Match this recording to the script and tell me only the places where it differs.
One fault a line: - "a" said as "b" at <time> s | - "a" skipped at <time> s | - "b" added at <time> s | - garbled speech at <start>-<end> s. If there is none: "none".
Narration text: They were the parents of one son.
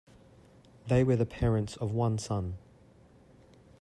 none